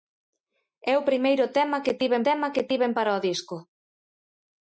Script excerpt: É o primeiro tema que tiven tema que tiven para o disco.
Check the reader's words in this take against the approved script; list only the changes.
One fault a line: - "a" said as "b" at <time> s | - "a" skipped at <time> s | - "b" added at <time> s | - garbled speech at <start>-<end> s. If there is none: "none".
none